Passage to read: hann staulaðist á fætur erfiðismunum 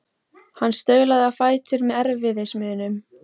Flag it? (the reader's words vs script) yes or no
yes